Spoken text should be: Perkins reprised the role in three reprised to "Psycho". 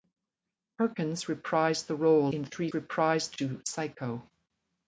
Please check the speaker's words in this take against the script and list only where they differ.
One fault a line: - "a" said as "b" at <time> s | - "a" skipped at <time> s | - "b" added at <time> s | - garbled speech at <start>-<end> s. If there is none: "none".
none